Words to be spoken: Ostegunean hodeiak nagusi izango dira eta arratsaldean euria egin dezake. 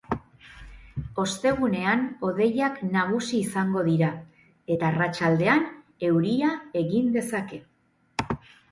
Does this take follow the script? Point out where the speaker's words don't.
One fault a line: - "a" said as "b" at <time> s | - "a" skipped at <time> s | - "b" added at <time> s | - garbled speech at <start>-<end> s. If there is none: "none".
none